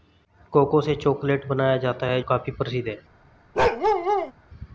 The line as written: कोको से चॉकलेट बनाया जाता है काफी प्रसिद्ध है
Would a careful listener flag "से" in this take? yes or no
no